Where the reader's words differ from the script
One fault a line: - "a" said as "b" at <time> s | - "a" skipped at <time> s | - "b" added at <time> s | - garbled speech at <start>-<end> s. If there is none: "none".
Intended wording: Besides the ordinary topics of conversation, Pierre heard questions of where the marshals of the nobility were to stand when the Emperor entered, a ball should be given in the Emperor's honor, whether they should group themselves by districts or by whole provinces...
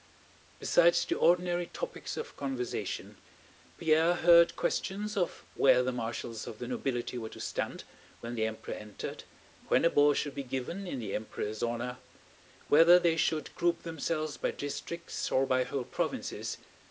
- "when" added at 9.7 s